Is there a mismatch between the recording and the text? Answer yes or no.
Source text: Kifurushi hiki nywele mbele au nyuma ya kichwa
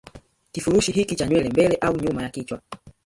yes